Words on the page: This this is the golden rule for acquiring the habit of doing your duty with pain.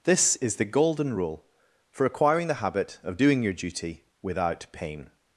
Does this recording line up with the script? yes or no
no